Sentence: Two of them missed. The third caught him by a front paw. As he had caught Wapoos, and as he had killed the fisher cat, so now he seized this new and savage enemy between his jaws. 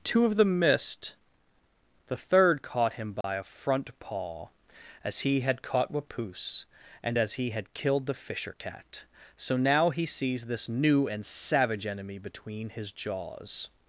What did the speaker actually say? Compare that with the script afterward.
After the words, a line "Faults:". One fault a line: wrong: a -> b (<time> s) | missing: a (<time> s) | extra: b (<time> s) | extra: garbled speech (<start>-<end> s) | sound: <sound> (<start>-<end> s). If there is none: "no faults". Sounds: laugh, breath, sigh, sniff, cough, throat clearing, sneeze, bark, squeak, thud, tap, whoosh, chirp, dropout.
Two of them missed. The third caught him by a front paw. As he had caught Wapoos, and as he had killed the fisher cat, so now he sees this new and savage enemy between his jaws.
Faults:
sound: dropout (3.2-3.2 s)
wrong: seized -> sees (10.0 s)